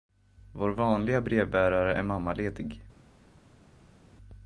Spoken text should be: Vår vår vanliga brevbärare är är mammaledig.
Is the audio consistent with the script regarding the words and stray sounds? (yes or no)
no